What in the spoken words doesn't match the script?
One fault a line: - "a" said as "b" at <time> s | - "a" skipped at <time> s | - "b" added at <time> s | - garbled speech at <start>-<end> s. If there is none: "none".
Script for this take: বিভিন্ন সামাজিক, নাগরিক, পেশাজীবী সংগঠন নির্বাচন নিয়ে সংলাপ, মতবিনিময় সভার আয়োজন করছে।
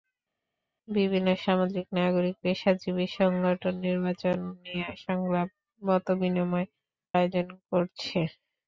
- "সভার" skipped at 6.7 s